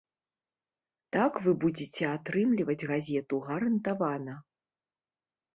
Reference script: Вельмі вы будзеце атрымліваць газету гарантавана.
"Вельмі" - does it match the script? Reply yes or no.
no